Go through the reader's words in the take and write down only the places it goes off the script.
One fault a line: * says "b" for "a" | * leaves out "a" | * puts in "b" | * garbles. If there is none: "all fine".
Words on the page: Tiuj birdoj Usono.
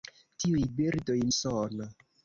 all fine